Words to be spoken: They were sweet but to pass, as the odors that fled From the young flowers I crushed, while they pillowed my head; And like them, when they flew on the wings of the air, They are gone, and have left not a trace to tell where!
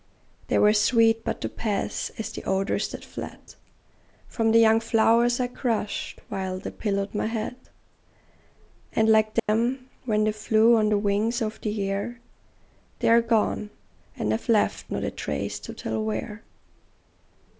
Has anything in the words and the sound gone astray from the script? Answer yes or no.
yes